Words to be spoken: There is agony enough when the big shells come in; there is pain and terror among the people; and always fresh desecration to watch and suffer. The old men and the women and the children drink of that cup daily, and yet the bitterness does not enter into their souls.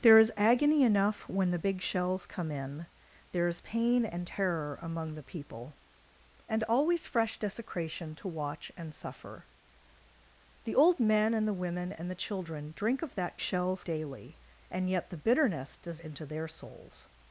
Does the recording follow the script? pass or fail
fail